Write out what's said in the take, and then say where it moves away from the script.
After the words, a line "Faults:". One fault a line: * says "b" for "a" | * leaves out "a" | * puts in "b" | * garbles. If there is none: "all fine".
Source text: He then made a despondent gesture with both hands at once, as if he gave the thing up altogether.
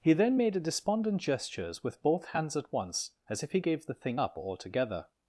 He then made a despondent gestures with both hands at once, as if he gave the thing up altogether.
Faults:
* says "gestures" for "gesture"